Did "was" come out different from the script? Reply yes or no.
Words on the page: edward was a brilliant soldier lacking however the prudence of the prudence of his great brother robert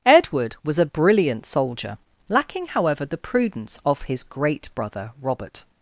no